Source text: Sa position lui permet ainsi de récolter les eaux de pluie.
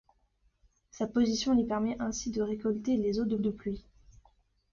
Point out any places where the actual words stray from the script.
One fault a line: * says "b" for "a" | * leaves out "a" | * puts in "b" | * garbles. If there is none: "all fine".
* puts in "de"